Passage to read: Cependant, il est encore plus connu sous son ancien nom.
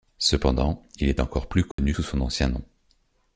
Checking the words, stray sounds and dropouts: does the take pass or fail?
fail